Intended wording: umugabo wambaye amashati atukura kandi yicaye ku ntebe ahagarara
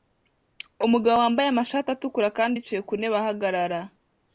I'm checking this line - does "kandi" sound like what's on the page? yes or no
yes